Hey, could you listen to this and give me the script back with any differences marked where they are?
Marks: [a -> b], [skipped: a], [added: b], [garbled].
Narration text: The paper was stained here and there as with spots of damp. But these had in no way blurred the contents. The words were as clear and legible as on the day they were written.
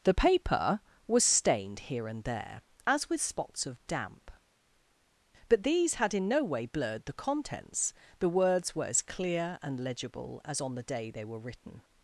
The paper was stained here and there as with spots of damp. But these had in no way blurred the contents. The words were as clear and legible as on the day they were written.